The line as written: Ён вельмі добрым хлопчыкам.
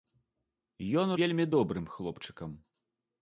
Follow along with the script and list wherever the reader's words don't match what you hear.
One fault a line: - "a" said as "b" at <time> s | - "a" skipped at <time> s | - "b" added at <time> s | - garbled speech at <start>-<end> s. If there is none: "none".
none